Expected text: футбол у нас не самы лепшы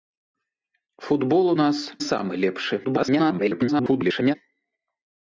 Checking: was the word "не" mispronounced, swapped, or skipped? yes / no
yes